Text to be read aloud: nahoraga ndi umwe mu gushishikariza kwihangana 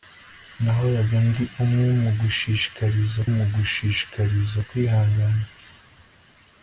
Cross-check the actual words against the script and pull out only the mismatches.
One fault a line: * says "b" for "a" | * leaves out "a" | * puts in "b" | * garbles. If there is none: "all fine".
* puts in "mu gushishikariza"